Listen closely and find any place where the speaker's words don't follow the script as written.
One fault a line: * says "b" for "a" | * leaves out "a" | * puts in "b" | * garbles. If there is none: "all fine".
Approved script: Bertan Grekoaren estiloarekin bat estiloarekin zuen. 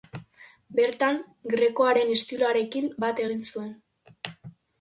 * says "egin" for "estiloarekin"